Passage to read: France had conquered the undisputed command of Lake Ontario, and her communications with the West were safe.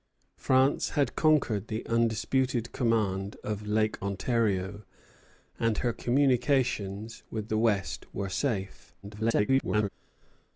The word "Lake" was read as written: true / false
true